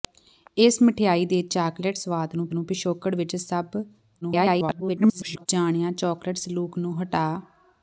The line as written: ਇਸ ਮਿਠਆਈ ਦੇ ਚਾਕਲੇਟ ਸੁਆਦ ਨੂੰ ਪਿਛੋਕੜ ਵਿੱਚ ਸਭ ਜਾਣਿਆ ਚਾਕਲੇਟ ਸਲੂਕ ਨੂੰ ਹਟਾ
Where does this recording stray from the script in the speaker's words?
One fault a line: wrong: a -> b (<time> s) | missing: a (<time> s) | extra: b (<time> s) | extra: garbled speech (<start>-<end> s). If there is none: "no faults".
extra: ਨੂੰ (2.5 s)
extra: garbled speech (4.2-5.5 s)